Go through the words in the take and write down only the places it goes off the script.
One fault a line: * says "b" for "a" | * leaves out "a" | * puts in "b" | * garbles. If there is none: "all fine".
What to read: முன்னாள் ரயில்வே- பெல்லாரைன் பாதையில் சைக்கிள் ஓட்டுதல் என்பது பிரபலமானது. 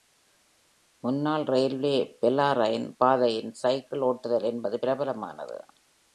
all fine